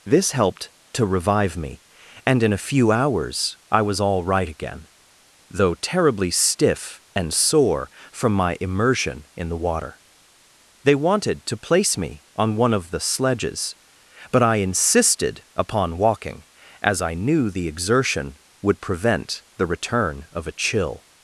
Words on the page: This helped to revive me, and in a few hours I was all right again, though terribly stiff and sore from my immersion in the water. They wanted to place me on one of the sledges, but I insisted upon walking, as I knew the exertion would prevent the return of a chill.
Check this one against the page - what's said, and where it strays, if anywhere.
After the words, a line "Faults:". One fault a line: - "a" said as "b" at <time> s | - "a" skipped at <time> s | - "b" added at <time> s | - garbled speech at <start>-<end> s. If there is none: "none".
This helped to revive me, and in a few hours I was all right again, though terribly stiff and sore from my immersion in the water. They wanted to place me on one of the sledges, but I insisted upon walking, as I knew the exertion would prevent the return of a chill.
Faults:
none